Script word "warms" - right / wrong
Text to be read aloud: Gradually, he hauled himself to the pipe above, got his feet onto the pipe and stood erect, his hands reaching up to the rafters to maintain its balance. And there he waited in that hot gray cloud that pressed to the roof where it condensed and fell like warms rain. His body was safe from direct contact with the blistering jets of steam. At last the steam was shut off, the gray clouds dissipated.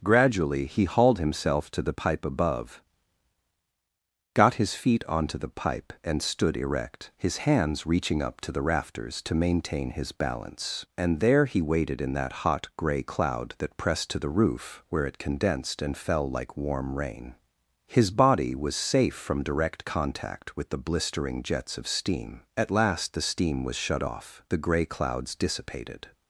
wrong